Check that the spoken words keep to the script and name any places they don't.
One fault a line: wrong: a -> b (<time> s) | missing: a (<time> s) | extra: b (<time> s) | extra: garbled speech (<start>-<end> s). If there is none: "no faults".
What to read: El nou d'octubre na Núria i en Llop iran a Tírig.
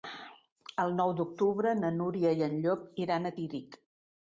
no faults